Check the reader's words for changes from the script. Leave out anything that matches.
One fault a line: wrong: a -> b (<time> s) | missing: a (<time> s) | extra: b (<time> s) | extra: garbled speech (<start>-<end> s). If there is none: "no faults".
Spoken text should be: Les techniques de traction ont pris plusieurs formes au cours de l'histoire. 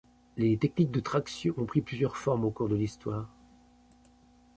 no faults